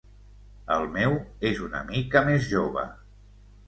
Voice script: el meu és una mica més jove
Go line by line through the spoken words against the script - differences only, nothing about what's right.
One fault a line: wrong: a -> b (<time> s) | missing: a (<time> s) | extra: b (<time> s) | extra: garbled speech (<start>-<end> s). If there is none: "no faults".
no faults